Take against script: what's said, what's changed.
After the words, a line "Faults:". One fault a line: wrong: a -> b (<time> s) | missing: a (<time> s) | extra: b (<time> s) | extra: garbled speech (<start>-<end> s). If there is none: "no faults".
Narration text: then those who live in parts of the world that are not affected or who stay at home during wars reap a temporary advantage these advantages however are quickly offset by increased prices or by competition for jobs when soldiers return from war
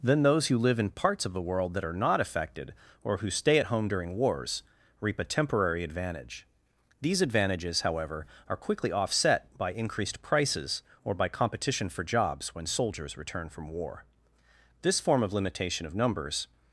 then those who live in parts of the world that are not affected or who stay at home during wars reap a temporary advantage these advantages however are quickly offset by increased prices or by competition for jobs when soldiers return from war this form of limitation of numbers
Faults:
extra: this form of limitation of numbers (14.8 s)